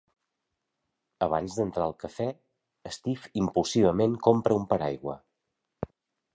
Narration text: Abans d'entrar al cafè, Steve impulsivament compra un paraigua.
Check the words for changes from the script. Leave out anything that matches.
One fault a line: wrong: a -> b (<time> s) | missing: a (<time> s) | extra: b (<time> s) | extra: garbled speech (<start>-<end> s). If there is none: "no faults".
no faults